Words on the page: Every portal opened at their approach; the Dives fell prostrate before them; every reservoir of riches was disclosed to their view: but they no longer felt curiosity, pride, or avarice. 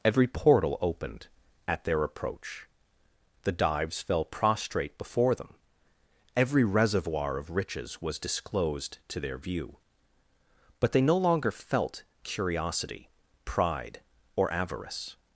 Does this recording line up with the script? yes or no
yes